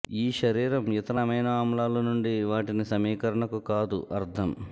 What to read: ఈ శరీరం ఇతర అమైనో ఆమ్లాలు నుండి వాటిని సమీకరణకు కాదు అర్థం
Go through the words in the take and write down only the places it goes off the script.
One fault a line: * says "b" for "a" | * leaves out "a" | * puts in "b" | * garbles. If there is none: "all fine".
all fine